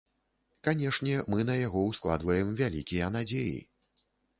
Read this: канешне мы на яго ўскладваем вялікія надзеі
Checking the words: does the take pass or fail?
pass